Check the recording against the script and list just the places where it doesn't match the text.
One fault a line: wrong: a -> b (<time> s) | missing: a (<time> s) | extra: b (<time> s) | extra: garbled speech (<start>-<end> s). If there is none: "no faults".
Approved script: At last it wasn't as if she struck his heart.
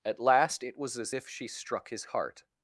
wrong: wasn't -> was (0.8 s)